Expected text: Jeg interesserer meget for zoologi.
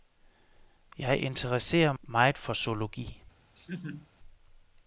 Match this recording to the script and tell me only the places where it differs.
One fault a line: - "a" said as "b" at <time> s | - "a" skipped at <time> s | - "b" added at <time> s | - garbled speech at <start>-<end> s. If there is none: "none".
none